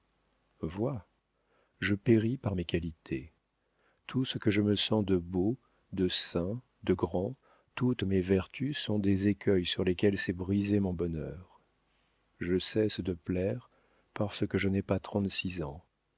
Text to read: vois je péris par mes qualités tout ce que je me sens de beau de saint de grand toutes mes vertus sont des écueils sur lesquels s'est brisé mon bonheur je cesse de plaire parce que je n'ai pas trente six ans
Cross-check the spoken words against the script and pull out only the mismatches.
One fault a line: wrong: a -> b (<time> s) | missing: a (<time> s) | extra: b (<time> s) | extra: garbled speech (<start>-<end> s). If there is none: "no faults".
no faults